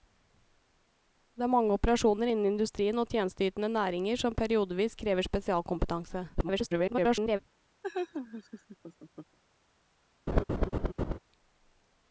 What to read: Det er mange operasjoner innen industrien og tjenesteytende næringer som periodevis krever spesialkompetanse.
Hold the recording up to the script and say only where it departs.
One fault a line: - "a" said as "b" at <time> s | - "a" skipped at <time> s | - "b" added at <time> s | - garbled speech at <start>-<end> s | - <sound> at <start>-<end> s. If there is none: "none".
- garbled speech at 6.3-7.4 s
- laugh at 7.8-9.4 s
- laugh at 10.3-11.2 s